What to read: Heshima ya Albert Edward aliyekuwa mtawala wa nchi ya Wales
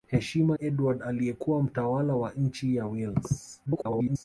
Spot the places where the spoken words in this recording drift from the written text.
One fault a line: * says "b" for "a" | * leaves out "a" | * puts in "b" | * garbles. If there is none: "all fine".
* leaves out "ya Albert"
* garbles